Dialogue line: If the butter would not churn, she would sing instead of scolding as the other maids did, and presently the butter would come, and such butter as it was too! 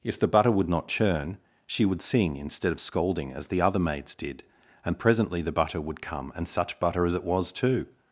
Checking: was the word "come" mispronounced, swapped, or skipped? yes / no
no